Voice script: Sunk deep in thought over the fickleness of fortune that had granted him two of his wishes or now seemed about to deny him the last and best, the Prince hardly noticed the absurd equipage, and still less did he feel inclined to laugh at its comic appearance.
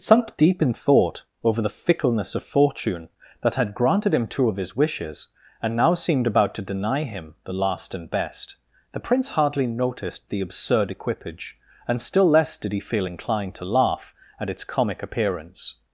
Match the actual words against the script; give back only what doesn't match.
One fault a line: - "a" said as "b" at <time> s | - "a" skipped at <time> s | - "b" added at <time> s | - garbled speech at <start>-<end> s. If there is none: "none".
- "or" said as "and" at 5.6 s